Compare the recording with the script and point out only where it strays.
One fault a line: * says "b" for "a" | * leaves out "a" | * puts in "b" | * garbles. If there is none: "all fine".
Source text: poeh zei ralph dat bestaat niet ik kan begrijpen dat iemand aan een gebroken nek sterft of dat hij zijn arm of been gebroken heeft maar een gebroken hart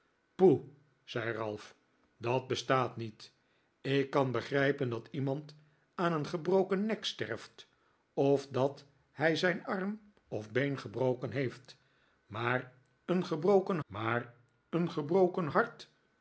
* puts in "maar een gebroken"